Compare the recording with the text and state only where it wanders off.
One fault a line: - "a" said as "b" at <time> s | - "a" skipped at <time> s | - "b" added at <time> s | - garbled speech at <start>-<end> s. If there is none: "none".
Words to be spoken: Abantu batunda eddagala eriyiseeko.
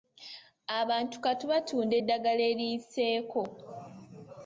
- "kati" added at 1.2 s